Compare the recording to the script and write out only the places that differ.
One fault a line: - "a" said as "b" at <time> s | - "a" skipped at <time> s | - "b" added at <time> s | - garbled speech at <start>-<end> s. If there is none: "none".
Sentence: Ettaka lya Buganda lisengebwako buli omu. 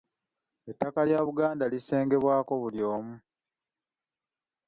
none